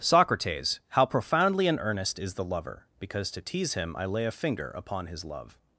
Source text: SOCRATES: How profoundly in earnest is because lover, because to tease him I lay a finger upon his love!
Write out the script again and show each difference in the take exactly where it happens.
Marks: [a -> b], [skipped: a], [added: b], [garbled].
SOCRATES: How profoundly in earnest is [because -> the] lover, because to tease him I lay a finger upon his love!